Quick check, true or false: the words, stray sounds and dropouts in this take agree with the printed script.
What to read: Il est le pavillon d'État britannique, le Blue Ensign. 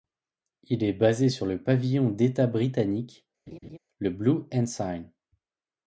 false